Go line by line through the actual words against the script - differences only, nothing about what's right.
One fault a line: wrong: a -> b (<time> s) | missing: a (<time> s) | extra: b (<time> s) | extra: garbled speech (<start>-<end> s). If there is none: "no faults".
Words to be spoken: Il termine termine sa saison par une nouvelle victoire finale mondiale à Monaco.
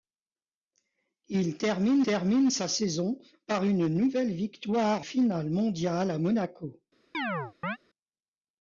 no faults